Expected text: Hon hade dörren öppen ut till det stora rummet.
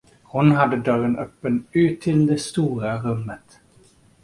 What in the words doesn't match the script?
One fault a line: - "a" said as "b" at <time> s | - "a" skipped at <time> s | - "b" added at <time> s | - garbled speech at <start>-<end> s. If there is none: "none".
none